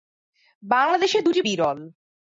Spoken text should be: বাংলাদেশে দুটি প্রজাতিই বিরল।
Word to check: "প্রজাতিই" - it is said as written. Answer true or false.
false